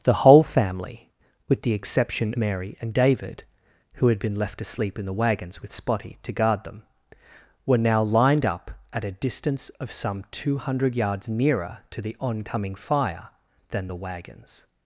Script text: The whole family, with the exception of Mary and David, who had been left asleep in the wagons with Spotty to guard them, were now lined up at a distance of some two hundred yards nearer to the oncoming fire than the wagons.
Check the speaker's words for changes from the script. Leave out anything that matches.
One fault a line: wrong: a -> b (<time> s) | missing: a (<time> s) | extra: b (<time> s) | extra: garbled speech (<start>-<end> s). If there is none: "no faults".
missing: of (2.3 s)